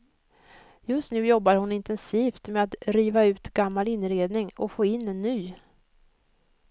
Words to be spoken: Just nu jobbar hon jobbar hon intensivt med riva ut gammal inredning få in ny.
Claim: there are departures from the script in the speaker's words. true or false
true